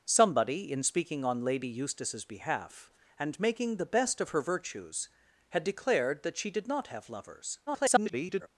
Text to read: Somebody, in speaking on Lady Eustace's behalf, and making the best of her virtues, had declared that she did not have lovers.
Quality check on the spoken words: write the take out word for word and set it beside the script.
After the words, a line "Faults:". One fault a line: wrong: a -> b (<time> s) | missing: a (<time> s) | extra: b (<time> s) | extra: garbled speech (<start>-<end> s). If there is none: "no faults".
Somebody, in speaking on Lady Eustace's behalf, and making the best of her virtues, had declared that she did not have lovers. [garbled]
Faults:
extra: garbled speech (7.7-8.5 s)